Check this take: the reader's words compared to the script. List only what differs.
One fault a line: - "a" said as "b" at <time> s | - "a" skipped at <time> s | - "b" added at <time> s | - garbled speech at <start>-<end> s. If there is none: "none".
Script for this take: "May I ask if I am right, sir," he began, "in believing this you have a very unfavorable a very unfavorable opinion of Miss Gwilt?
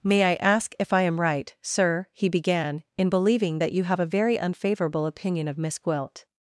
- "this" said as "that" at 3.6 s
- "a very unfavorable" skipped at 5.0 s